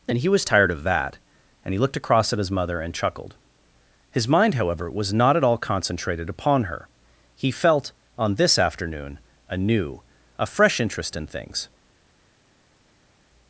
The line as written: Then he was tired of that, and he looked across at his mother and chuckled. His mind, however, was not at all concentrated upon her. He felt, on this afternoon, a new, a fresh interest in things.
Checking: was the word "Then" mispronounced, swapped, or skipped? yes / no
yes